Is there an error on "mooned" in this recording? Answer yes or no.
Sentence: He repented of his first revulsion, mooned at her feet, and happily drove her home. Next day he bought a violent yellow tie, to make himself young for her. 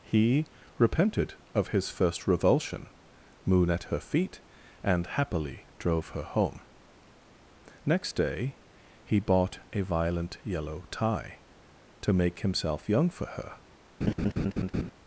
yes